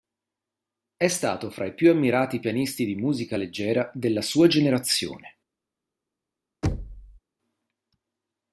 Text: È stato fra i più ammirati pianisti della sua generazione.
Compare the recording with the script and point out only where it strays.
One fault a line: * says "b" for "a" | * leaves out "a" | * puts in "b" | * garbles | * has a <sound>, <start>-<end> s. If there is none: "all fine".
* puts in "di musica leggera"
* has a thud, 6.6-7.2 s